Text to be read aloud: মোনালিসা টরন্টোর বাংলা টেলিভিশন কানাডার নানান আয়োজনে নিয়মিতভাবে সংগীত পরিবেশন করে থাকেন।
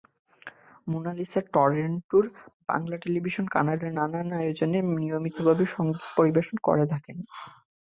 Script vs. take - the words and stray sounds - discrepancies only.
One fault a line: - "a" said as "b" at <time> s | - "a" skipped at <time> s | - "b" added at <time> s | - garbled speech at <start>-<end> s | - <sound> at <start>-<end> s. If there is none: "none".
none